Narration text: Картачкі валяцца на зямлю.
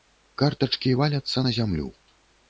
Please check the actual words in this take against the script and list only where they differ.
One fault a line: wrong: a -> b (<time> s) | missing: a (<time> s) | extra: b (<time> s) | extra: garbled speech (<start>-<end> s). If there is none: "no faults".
no faults